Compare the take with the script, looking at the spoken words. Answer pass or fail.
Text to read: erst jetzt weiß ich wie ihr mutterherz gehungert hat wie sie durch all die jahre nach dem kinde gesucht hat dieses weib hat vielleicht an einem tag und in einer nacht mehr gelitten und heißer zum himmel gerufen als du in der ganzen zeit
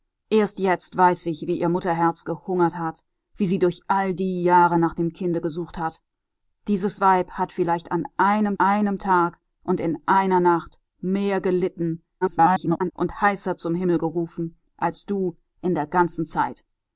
fail